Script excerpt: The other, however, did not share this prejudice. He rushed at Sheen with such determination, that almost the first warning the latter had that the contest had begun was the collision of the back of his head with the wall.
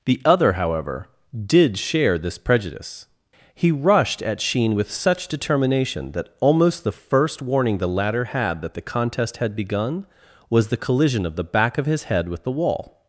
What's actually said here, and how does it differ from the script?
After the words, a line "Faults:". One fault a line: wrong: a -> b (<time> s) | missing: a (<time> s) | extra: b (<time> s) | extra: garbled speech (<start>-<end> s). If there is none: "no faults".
The other, however, did share this prejudice. He rushed at Sheen with such determination, that almost the first warning the latter had that the contest had begun was the collision of the back of his head with the wall.
Faults:
missing: not (1.8 s)